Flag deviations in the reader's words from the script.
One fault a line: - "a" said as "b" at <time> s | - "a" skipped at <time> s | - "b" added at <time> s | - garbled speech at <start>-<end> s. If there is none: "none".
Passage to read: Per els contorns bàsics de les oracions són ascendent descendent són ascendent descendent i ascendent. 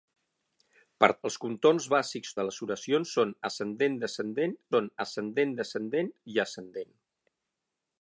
none